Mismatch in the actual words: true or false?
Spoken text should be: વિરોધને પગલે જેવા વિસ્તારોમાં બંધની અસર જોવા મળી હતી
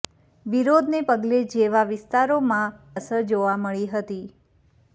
true